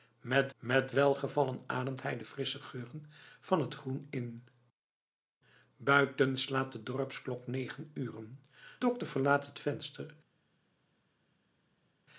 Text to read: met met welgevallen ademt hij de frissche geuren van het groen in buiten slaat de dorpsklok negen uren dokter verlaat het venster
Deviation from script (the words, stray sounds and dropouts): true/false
false